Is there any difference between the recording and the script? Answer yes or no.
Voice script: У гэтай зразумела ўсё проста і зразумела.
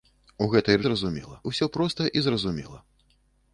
no